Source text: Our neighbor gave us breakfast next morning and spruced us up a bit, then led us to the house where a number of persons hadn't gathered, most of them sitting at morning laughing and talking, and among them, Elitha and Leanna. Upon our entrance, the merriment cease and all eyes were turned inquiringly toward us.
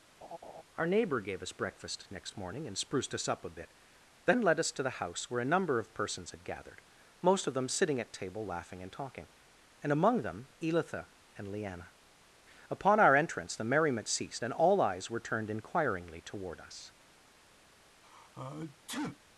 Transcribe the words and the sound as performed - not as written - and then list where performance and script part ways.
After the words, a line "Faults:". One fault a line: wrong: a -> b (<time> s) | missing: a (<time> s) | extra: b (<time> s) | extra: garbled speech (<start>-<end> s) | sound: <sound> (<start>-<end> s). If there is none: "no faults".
Our neighbor gave us breakfast next morning and spruced us up a bit, then led us to the house where a number of persons had gathered, most of them sitting at table laughing and talking, and among them, Elitha and Leanna. Upon our entrance, the merriment ceased and all eyes were turned inquiringly toward us.
Faults:
sound: laugh (0.2-0.6 s)
wrong: hadn't -> had (6.3 s)
wrong: morning -> table (8.1 s)
wrong: cease -> ceased (14.1 s)
sound: sneeze (18.0-19.2 s)